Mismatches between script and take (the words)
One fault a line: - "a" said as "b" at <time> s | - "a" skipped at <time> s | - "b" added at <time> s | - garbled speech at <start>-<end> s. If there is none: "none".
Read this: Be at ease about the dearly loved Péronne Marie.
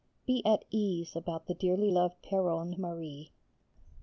none